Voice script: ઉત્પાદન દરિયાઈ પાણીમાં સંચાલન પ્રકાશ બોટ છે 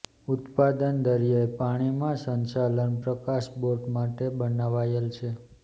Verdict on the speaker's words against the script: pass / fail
fail